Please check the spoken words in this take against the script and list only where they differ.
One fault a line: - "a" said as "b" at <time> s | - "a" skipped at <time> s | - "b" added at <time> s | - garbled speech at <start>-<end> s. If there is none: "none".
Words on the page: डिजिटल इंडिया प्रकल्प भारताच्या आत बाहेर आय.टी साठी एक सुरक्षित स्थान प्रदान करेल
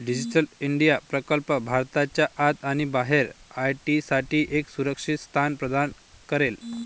- "आणि" added at 2.6 s